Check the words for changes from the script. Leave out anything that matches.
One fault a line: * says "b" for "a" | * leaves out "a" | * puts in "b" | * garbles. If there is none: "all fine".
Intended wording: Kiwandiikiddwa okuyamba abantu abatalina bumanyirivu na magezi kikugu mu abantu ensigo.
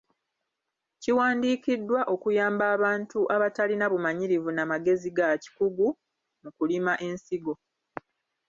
* puts in "ga"
* says "kulima" for "abantu"